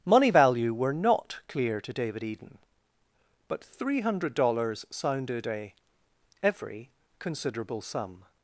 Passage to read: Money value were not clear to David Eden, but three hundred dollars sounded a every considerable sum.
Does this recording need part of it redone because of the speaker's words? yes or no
no